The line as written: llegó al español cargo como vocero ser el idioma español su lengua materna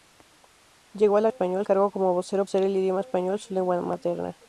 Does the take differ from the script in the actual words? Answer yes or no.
no